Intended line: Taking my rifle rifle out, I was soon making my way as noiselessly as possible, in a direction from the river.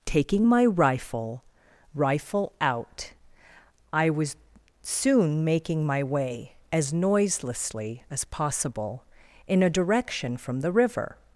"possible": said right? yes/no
yes